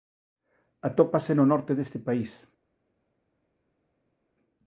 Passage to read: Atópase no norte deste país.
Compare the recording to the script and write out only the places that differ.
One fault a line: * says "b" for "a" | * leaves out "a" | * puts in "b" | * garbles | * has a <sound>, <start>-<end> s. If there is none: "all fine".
all fine